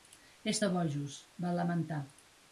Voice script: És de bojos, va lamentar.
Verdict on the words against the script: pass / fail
pass